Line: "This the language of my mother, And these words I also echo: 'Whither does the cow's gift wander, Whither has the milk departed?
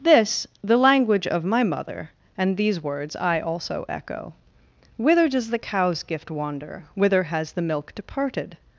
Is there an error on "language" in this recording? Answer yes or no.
no